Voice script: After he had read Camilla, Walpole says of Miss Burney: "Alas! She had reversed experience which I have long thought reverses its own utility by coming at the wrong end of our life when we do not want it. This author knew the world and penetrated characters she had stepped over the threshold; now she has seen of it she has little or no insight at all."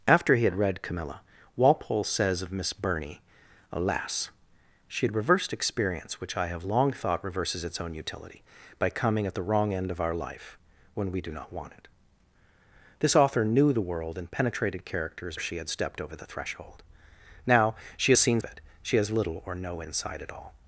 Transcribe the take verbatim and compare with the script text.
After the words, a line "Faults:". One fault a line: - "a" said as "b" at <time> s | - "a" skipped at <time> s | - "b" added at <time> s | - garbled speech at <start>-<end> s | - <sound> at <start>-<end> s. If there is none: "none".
After he had read Camilla, Walpole says of Miss Burney: "Alas! She had reversed experience which I have long thought reverses its own utility by coming at the wrong end of our life when we do not want it. This author knew the world and penetrated characters she had stepped over the threshold; now she has seen of it she has little or no insight at all."
Faults:
none